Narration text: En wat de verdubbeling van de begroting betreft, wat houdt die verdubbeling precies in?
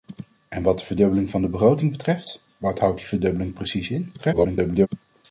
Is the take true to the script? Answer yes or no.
no